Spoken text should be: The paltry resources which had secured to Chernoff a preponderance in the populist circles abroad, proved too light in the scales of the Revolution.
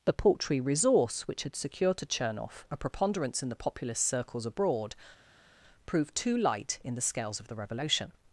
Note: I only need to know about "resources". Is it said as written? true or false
false